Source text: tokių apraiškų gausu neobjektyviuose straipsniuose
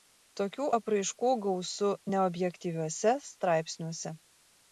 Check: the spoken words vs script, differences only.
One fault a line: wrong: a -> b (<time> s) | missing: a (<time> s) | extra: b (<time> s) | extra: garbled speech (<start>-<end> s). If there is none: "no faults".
no faults